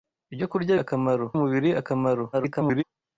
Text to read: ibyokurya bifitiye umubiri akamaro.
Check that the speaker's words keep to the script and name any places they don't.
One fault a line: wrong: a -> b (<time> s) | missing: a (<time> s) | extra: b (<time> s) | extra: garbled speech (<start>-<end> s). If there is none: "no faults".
wrong: bifitiye -> akamaro (0.8 s)
extra: garbled speech (2.3-2.8 s)